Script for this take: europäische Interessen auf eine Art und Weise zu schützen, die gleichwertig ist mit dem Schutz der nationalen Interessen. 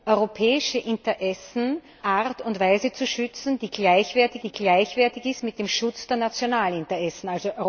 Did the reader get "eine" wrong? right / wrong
wrong